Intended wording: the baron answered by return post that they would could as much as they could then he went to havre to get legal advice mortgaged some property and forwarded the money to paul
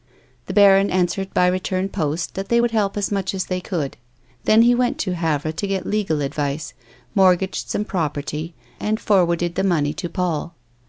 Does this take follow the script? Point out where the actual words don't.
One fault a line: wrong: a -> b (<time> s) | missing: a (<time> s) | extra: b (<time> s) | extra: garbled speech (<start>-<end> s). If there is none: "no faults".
wrong: could -> help (2.7 s)